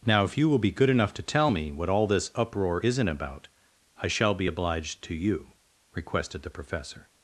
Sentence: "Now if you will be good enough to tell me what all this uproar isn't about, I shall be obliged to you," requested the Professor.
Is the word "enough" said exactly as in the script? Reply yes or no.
yes